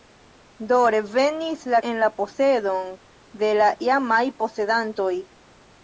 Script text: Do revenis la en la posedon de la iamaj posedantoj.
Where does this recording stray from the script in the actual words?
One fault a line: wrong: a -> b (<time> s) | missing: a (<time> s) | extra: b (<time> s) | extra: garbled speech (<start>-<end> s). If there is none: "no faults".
no faults